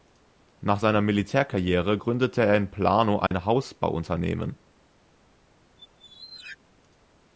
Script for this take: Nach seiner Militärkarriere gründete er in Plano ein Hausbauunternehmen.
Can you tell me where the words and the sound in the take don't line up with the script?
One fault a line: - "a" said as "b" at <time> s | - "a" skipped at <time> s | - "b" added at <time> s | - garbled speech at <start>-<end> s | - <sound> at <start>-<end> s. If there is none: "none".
- dropout at 3.3-3.3 s
- squeak at 5.8-6.6 s